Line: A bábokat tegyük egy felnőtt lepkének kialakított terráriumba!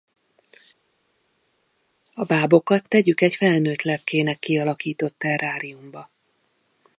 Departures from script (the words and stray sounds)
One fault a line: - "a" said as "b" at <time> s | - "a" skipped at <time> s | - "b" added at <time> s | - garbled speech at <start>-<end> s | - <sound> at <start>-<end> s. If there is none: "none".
none